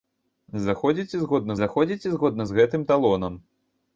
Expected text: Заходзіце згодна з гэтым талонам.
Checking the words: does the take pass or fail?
fail